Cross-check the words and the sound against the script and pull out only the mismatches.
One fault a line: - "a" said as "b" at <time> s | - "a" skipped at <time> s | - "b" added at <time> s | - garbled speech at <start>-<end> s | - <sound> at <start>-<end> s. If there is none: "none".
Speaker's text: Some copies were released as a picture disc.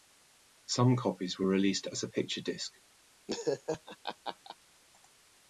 - laugh at 3.3-4.6 s